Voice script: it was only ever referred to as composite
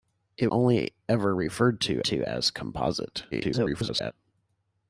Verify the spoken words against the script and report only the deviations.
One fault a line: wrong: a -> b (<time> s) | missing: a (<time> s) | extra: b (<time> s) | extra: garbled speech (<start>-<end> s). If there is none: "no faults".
missing: was (0.5 s)
extra: to (2.0 s)
extra: garbled speech (3.3-4.1 s)